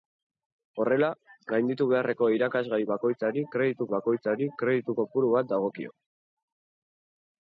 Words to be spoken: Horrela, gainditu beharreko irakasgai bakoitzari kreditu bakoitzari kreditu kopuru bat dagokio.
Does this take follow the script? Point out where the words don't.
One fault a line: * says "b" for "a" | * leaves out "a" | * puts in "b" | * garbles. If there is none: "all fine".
all fine